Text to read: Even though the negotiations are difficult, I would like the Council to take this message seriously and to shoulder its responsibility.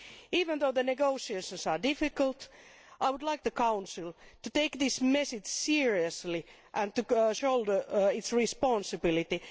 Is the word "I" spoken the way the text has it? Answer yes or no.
yes